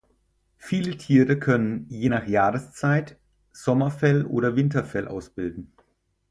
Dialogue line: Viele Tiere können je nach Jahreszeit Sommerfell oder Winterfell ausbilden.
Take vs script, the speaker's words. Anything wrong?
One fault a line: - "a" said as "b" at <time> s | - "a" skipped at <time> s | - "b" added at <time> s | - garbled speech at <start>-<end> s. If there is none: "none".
none